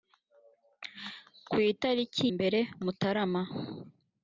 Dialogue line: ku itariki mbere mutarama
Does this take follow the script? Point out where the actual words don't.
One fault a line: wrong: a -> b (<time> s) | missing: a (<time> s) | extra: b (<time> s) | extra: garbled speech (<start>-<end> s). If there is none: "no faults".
no faults